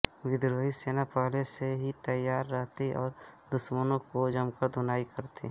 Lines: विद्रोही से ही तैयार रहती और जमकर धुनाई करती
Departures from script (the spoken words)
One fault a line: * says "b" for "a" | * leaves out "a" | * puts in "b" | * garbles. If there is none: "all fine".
* puts in "सेना पहले"
* puts in "दुश्मनों की"